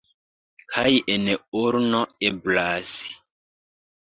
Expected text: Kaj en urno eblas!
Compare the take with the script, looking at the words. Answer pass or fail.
pass